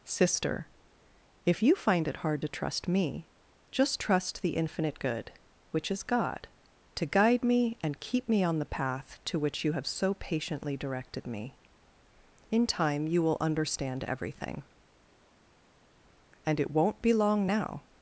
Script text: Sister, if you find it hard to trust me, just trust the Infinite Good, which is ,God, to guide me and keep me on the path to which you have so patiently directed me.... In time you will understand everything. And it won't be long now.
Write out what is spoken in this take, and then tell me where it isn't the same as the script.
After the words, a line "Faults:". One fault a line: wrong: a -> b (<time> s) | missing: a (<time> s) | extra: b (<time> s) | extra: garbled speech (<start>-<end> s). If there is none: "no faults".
Sister, if you find it hard to trust me, just trust the Infinite Good, which is ,God, to guide me and keep me on the path to which you have so patiently directed me.... In time you will understand everything. And it won't be long now.
Faults:
no faults